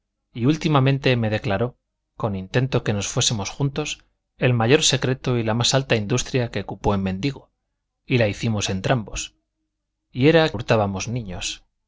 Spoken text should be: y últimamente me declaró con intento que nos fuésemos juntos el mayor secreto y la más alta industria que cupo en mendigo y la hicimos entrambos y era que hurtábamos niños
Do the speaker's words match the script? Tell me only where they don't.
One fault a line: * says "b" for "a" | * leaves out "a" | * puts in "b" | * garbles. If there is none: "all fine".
* leaves out "que"